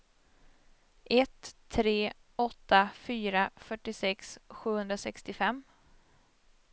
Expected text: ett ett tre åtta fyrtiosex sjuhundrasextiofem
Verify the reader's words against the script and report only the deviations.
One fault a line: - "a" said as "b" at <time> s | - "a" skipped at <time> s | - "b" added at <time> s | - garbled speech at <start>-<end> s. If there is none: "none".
- "ett" skipped at 1.6 s
- "fyra" added at 2.9 s